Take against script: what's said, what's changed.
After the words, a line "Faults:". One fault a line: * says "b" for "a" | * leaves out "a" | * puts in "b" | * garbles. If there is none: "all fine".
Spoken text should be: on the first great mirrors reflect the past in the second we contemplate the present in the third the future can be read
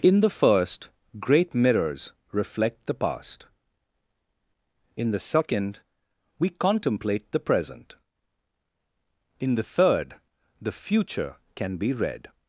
in the first great mirrors reflect the past in the second we contemplate the present in the third the future can be read
Faults:
* says "in" for "on"